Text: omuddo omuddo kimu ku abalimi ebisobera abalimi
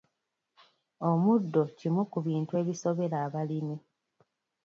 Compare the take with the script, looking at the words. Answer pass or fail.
fail